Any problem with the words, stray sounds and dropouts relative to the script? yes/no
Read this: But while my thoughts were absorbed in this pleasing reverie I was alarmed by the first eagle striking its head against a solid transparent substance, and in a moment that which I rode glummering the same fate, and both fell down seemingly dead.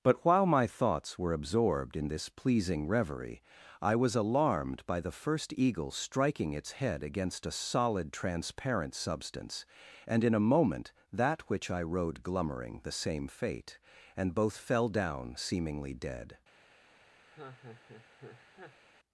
yes